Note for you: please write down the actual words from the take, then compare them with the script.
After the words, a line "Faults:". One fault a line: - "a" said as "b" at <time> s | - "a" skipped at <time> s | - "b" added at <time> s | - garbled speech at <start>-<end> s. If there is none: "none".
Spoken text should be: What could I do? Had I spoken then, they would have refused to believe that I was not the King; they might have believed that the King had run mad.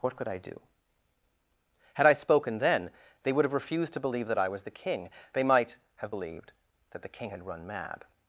What could I do? Had I spoken then, they would have refused to believe that I was the King; they might have believed that the King had run mad.
Faults:
- "not" skipped at 4.6 s